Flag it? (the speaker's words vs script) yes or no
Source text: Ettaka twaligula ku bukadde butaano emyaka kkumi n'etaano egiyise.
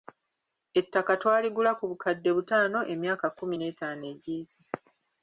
no